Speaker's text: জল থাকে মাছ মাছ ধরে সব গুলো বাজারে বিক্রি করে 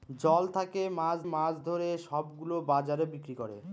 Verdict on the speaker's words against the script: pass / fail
pass